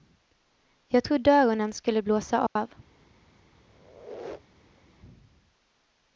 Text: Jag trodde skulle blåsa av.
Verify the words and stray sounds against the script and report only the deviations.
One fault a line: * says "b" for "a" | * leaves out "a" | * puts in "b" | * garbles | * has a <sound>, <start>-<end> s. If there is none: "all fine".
* puts in "öronen"
* has a dropout, 2.5-2.6 s
* has a squeak, 3.7-4.8 s